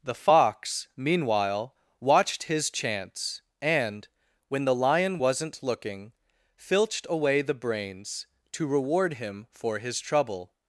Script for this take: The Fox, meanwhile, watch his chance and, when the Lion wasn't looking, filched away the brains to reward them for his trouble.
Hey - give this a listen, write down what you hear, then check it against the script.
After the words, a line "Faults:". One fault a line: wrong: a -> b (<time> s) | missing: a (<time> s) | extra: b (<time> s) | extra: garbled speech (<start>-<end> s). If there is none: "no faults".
The Fox, meanwhile, watched his chance and, when the Lion wasn't looking, filched away the brains to reward him for his trouble.
Faults:
wrong: watch -> watched (2.0 s)
wrong: them -> him (9.2 s)